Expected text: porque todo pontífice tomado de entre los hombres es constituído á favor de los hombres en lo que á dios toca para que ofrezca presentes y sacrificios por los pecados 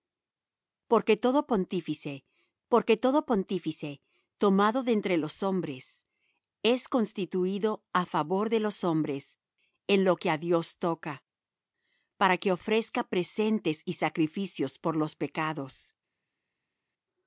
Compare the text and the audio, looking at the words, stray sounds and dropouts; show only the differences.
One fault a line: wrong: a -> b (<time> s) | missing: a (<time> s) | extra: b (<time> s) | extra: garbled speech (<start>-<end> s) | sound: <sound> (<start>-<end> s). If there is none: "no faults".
extra: porque todo pontífice (2.7 s)